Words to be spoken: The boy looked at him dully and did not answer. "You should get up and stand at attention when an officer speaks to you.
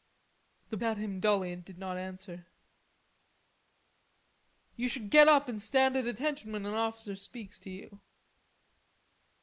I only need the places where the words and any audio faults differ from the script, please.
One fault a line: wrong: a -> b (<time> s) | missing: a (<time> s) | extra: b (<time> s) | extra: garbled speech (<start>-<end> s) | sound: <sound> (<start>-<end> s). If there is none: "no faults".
missing: boy looked (0.8 s)